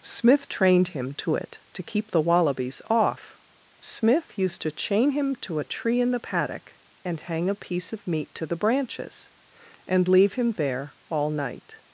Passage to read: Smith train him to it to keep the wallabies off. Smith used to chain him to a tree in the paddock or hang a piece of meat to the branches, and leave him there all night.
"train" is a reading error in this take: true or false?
true